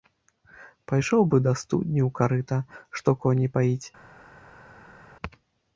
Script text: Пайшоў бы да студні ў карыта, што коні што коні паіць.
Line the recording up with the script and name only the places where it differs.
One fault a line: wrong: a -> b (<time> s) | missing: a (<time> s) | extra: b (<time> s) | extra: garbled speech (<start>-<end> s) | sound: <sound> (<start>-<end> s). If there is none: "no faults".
missing: што коні (3.5 s)